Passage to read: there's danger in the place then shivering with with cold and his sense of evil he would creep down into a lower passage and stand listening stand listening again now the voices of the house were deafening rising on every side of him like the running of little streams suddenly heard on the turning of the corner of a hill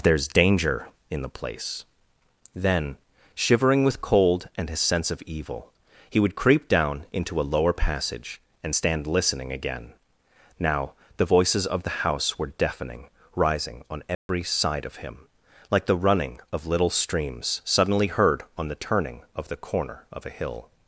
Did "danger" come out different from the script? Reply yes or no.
no